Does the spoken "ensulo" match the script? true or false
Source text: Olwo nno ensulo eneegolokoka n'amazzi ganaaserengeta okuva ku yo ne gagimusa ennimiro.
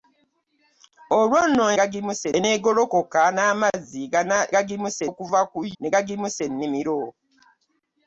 false